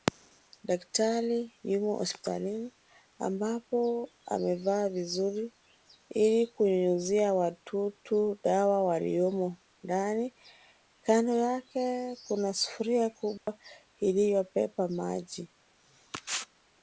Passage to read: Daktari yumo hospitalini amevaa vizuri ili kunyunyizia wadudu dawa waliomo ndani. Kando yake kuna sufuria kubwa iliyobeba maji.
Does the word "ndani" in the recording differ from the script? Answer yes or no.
no